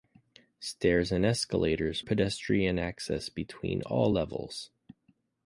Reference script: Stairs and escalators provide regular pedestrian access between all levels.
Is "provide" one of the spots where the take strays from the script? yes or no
yes